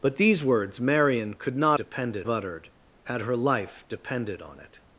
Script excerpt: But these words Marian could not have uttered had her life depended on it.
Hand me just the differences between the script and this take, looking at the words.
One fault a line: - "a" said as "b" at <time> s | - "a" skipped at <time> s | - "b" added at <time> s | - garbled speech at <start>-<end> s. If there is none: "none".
- "have" said as "depended" at 1.7 s